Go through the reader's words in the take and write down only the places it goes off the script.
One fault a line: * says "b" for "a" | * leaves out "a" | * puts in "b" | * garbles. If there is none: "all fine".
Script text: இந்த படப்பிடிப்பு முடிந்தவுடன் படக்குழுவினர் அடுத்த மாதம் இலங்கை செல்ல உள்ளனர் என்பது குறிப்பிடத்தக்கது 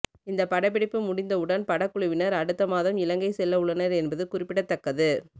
all fine